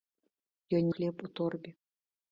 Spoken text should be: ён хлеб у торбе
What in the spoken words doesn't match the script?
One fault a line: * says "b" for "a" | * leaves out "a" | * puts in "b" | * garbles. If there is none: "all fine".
all fine